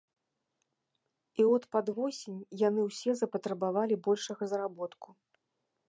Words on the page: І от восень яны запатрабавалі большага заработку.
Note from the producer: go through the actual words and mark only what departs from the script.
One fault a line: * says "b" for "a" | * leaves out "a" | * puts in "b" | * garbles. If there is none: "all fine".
* puts in "пад"
* puts in "ўсе"